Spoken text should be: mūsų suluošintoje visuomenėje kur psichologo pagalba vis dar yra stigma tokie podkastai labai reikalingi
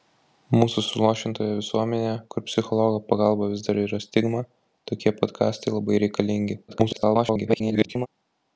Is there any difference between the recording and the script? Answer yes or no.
yes